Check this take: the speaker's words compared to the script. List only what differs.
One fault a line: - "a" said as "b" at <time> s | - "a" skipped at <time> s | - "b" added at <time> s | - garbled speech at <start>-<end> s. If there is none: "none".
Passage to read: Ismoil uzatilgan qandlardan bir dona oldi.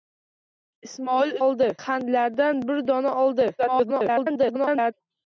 - "uzatilgan" said as "oldi" at 1.5 s
- garbled speech at 3.6-4.9 s